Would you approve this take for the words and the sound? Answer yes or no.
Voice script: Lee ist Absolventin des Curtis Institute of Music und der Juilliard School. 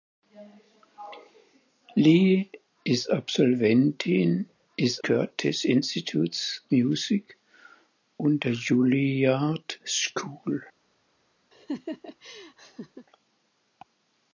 no